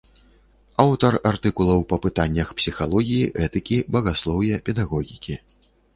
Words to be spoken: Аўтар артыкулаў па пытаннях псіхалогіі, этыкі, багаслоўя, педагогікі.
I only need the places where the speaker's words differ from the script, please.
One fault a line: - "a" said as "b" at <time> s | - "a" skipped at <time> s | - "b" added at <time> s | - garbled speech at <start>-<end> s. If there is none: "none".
none